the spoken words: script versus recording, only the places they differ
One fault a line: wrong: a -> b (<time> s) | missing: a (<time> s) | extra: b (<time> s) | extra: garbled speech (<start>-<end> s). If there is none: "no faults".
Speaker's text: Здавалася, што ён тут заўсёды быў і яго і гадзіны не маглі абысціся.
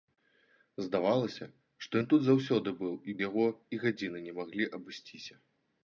no faults